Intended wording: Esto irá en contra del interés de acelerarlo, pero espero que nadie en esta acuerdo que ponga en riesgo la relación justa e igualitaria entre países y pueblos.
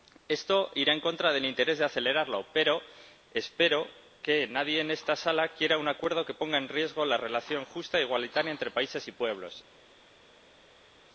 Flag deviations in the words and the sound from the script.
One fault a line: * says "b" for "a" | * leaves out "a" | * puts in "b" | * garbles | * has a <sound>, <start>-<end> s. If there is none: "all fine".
* puts in "sala quiera un"